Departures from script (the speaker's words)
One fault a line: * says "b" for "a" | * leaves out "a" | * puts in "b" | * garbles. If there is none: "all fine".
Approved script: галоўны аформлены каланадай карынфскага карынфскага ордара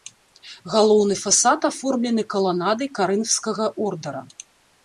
* puts in "фасад"
* leaves out "карынфскага"